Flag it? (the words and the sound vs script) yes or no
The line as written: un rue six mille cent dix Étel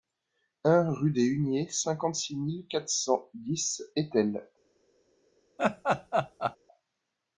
yes